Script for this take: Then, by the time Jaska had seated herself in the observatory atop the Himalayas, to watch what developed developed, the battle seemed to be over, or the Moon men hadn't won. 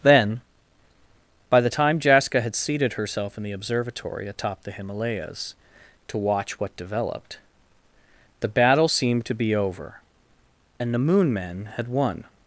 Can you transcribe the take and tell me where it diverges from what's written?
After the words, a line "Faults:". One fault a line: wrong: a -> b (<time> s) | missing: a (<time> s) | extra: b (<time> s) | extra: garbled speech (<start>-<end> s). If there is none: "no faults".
Then, by the time Jaska had seated herself in the observatory atop the Himalayas, to watch what developed, the battle seemed to be over, and the Moon men had won.
Faults:
missing: developed (7.4 s)
wrong: or -> and (10.8 s)
wrong: hadn't -> had (11.8 s)